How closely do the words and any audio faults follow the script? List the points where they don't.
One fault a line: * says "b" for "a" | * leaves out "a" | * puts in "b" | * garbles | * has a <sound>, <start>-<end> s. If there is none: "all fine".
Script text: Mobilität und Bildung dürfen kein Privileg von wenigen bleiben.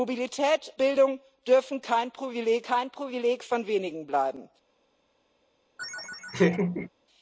* leaves out "und"
* puts in "kein Privileg"
* has a laugh, 5.8-6.9 s